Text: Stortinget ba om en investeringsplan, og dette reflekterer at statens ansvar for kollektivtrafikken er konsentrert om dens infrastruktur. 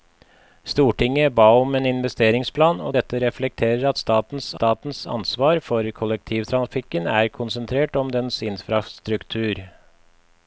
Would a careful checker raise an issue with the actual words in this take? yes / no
yes